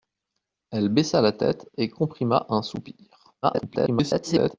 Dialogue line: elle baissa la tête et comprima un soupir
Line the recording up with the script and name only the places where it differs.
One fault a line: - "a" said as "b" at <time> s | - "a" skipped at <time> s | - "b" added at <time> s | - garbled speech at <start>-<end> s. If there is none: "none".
- garbled speech at 3.4-4.6 s